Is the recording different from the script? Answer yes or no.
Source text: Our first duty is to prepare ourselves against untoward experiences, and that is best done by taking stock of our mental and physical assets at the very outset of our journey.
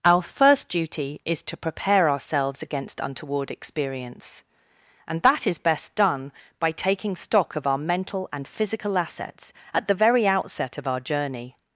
yes